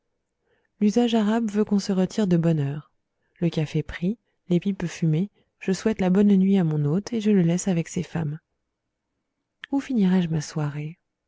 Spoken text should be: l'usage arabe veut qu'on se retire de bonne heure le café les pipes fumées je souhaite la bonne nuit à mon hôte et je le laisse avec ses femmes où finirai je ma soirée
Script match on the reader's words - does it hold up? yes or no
no